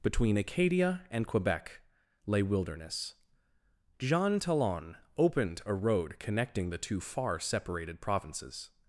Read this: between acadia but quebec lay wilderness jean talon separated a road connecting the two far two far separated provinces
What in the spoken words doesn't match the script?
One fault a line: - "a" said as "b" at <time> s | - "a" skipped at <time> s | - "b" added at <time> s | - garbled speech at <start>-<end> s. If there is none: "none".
- "but" said as "and" at 1.1 s
- "separated" said as "opened" at 5.2 s
- "two far" skipped at 7.4 s